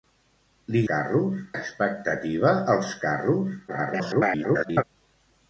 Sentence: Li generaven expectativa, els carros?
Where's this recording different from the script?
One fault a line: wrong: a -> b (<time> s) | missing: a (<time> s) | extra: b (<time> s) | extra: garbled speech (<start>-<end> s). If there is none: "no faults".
wrong: generaven -> carros (0.9 s)
extra: garbled speech (3.7-4.8 s)